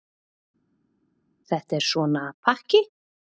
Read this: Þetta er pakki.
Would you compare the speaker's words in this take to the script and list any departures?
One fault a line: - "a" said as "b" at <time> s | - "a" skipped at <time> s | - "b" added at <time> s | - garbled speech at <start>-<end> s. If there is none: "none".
- "svona" added at 1.9 s